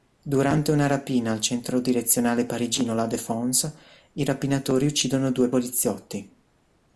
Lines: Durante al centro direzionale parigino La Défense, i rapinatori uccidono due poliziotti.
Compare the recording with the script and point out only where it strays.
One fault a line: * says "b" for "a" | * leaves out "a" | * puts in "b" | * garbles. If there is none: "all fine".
* puts in "una rapina"